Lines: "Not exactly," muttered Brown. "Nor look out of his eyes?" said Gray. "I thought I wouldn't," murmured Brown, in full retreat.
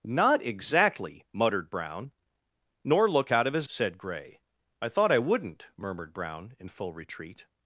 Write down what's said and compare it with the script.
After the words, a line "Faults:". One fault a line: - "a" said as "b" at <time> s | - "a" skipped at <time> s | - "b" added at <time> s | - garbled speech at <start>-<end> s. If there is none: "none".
"Not exactly," muttered Brown. "Nor look out of his?" said Gray. "I thought I wouldn't," murmured Brown, in full retreat.
Faults:
- "eyes" skipped at 3.7 s